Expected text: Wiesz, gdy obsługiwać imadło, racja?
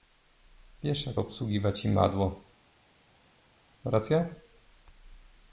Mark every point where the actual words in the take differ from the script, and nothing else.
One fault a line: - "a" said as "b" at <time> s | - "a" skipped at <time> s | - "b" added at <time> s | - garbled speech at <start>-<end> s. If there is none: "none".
- "gdy" said as "jak" at 1.1 s